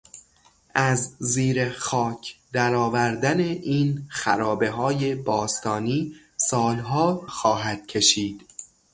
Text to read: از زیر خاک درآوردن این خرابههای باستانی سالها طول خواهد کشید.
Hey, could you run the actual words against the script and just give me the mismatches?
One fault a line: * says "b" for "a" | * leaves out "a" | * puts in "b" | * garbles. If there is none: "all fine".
* leaves out "طول"